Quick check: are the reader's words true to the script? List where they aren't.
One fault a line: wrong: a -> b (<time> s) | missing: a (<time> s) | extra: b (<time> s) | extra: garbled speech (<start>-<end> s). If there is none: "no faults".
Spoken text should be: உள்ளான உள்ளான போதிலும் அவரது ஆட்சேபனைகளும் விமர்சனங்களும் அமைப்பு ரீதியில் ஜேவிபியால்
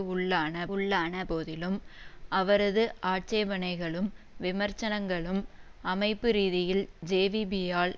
no faults